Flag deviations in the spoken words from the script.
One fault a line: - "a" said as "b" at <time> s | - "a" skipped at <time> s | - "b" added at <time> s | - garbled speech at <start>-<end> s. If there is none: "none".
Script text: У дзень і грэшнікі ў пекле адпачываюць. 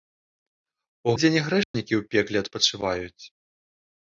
none